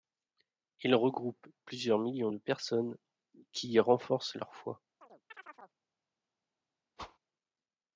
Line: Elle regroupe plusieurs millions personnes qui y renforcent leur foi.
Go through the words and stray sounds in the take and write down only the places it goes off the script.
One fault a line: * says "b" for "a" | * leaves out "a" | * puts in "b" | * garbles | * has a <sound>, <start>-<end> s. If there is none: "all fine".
* says "Il" for "Elle"
* puts in "de"
* has a chirp, 5.0-5.8 s
* has a whoosh, 7.0-7.2 s